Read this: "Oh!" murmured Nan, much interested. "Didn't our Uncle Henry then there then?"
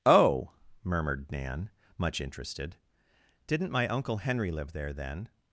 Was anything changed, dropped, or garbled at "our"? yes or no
yes